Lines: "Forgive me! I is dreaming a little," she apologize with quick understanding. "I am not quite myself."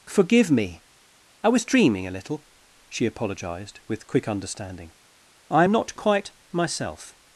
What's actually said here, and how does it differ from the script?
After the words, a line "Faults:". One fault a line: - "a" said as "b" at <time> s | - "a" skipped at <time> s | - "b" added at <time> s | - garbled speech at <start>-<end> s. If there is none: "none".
"Forgive me! I was dreaming a little," she apologized with quick understanding. "I am not quite myself."
Faults:
- "is" said as "was" at 1.5 s
- "apologize" said as "apologized" at 3.1 s